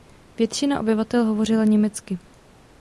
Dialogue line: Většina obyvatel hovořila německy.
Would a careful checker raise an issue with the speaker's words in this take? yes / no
no